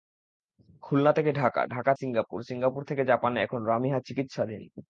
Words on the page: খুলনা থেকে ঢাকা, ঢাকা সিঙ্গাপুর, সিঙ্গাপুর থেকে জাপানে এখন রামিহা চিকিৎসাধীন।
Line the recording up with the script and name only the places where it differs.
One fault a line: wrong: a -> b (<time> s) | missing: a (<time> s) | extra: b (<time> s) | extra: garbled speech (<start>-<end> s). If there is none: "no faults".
no faults